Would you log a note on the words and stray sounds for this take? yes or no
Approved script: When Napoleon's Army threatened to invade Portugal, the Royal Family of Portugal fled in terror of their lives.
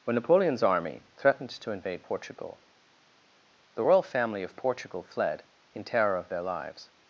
no